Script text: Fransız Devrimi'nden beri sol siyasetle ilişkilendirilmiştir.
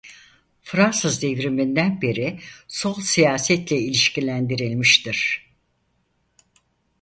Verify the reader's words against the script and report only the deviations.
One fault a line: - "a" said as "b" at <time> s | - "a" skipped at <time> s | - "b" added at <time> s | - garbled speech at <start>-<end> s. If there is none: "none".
none